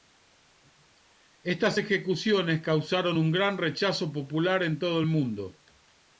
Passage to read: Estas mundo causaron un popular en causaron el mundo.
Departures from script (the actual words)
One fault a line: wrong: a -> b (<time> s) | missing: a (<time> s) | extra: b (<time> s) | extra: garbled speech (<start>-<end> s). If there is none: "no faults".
wrong: mundo -> ejecuciones (1.7 s)
extra: gran rechazo (3.3 s)
wrong: causaron -> todo (4.8 s)